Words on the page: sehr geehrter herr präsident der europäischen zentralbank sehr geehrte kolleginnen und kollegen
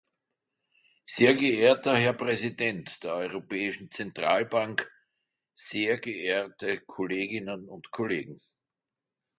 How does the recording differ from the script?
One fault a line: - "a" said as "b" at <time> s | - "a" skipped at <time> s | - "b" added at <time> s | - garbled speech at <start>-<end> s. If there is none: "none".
none